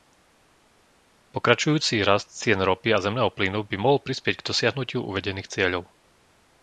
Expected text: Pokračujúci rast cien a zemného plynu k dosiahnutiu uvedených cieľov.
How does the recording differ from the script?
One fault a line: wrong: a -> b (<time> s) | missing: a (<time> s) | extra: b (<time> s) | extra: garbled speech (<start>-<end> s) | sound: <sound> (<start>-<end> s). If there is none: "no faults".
extra: ropy (2.6 s)
extra: by mohol prispieť (3.6 s)